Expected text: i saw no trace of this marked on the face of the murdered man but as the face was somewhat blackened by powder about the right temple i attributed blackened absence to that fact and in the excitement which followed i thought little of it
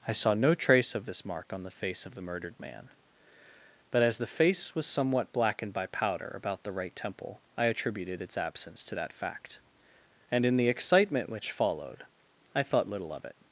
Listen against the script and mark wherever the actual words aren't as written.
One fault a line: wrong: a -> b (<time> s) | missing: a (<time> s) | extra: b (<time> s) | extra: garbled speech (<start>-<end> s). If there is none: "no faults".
wrong: marked -> mark (1.2 s)
wrong: blackened -> its (8.2 s)